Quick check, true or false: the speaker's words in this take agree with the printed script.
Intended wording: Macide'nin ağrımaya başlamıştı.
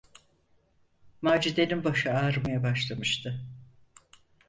false